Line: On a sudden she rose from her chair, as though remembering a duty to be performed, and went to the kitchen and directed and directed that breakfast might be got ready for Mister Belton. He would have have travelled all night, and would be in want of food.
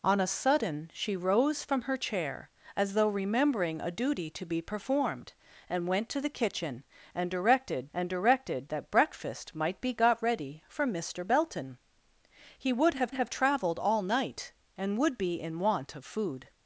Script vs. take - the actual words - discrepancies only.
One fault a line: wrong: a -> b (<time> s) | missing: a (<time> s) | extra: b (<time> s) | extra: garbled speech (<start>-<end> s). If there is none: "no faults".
no faults